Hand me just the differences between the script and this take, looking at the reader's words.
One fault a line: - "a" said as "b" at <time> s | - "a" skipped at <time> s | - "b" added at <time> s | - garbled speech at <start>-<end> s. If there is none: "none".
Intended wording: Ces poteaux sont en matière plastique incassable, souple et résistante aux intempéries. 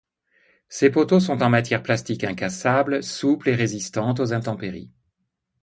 none